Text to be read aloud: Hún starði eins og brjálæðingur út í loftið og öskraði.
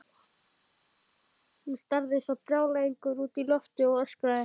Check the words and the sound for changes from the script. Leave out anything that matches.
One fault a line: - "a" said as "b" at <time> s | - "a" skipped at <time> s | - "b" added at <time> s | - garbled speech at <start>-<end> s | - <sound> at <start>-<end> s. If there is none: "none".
none